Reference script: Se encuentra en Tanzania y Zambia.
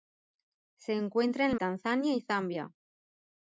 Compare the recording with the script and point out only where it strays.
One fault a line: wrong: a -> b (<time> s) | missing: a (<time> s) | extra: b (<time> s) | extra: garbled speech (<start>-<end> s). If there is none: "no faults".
no faults